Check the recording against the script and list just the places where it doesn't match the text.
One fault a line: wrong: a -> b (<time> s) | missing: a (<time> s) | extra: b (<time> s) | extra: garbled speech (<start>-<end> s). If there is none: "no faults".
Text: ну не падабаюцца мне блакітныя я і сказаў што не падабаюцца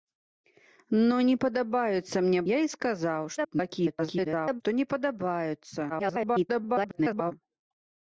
missing: блакітныя (2.4 s)
extra: garbled speech (3.4-4.6 s)
extra: garbled speech (5.9-7.3 s)